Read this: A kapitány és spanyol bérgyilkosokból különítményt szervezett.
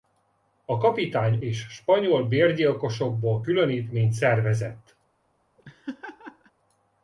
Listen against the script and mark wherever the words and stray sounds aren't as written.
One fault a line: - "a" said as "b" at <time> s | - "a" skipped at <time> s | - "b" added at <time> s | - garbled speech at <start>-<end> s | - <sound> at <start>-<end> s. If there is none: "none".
- laugh at 5.6-6.5 s